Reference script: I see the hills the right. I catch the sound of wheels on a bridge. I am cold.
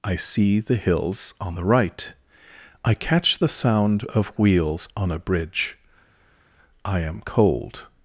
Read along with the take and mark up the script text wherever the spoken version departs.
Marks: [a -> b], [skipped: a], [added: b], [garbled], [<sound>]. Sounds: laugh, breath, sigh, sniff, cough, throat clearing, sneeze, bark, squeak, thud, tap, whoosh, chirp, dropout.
I see the hills [added: on] the right. I catch the sound of wheels on a bridge. I am cold.